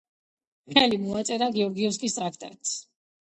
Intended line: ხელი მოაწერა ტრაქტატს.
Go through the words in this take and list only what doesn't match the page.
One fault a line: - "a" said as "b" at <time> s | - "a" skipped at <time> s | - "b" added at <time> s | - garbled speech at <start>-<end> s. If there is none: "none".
- "გეორგიევსკის" added at 1.6 s